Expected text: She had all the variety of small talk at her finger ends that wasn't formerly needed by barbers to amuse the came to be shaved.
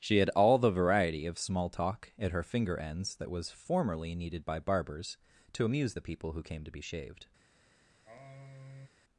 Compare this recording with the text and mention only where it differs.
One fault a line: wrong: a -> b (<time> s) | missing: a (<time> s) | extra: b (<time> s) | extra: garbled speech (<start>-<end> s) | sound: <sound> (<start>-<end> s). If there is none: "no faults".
wrong: wasn't -> was (3.3 s)
extra: people who (6.0 s)
sound: sigh (8.1-8.9 s)